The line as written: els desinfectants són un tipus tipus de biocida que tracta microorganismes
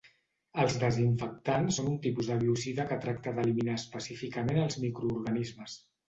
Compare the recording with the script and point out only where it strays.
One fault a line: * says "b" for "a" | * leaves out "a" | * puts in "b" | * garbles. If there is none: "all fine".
* leaves out "tipus"
* puts in "d'eliminar específicament els"